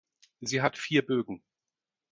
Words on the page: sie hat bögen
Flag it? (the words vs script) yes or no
yes